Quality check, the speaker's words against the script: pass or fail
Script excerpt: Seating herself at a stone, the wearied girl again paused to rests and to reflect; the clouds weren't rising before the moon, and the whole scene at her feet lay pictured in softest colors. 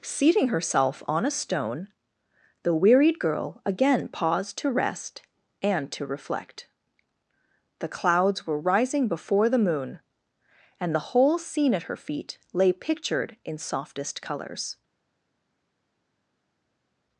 fail